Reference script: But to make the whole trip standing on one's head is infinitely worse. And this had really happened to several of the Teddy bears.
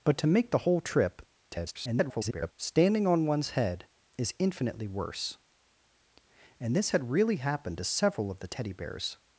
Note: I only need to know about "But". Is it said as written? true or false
true